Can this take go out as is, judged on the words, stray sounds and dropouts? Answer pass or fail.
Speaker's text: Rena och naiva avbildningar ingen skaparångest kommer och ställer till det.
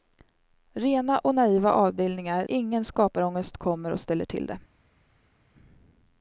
pass